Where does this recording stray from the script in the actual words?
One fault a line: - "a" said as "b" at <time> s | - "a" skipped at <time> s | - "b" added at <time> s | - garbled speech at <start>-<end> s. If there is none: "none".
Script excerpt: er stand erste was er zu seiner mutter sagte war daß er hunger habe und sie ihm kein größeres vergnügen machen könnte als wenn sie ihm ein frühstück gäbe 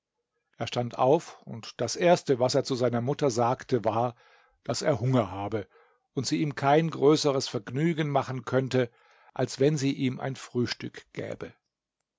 - "auf und das" added at 1.0 s